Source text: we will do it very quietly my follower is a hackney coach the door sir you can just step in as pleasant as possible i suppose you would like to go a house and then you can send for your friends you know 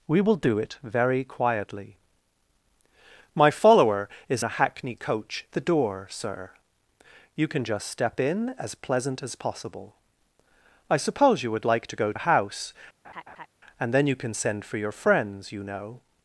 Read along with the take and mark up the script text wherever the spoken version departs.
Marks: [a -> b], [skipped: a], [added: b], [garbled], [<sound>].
we will do it very quietly my follower is a hackney coach the door sir you can just step in as pleasant as possible i suppose you would like to go a house [laugh] and then you can send for your friends you know